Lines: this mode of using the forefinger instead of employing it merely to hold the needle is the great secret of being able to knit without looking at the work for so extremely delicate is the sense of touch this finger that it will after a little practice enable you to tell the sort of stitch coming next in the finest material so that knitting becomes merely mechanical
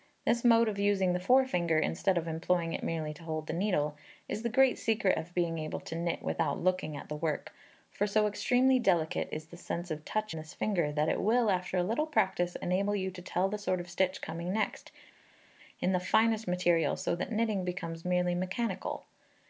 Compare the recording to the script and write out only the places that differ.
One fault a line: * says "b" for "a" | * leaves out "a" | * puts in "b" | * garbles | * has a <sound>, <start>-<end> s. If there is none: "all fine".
all fine